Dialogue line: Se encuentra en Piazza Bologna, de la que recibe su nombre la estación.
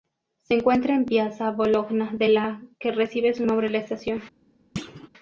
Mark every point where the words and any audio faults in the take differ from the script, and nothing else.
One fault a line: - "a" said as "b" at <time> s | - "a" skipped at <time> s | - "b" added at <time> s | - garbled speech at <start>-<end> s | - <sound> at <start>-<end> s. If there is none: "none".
- thud at 4.8-5.1 s